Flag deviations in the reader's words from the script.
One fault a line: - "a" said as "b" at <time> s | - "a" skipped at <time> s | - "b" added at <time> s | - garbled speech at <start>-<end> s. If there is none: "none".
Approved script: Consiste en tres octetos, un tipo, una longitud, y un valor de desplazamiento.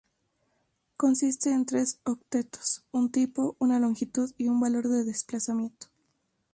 none